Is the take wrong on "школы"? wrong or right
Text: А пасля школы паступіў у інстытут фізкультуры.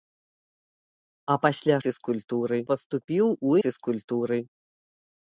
wrong